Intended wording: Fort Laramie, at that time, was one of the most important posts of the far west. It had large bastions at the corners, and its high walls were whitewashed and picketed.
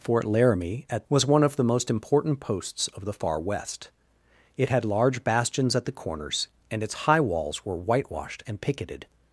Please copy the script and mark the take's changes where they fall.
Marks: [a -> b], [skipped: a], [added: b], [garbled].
Fort Laramie, at [skipped: that time,] was one of the most important posts of the far west. It had large bastions at the corners, and its high walls were whitewashed and picketed.